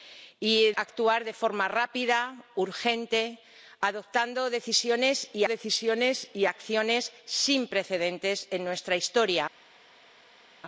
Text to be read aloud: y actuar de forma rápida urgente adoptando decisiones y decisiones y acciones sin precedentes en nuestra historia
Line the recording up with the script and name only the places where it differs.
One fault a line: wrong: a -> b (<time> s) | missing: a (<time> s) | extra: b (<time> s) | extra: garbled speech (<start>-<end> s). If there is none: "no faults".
no faults